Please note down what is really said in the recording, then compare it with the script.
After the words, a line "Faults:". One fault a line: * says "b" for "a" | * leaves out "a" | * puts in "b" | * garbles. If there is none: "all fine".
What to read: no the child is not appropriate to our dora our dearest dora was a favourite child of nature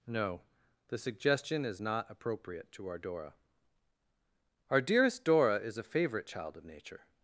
no the suggestion is not appropriate to our dora our dearest dora is a favourite child of nature
Faults:
* says "suggestion" for "child"
* says "is" for "was"